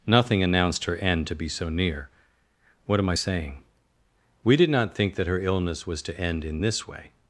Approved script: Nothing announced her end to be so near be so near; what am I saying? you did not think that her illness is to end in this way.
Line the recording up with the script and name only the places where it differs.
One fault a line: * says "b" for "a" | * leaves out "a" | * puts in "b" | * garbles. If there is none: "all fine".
* leaves out "be so near"
* says "we" for "you"
* says "was" for "is"